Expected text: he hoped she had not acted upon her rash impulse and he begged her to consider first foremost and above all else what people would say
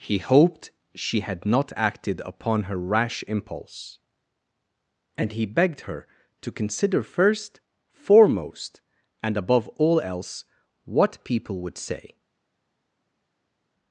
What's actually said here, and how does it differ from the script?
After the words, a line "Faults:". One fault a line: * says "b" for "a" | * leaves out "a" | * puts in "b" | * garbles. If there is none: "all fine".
he hoped she had not acted upon her rash impulse and he begged her to consider first foremost and above all else what people would say
Faults:
all fine